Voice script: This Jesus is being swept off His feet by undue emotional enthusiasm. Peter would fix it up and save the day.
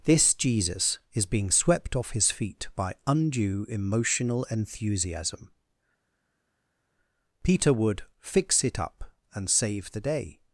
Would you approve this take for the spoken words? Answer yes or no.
yes